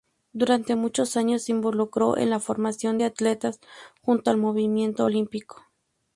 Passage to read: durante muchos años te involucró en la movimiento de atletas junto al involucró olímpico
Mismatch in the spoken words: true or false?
true